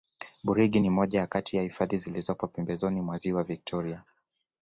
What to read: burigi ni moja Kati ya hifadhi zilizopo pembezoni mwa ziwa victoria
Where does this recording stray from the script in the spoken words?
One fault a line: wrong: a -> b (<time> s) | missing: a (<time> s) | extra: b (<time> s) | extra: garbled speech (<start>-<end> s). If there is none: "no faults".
no faults